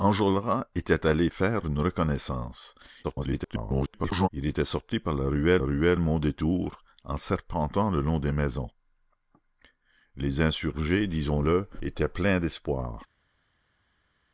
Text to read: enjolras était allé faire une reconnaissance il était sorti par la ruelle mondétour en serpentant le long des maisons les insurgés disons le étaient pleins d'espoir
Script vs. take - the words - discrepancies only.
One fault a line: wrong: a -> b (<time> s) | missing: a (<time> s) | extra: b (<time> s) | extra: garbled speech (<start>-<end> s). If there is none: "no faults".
extra: garbled speech (3.0-4.3 s)
extra: ruelle (5.6 s)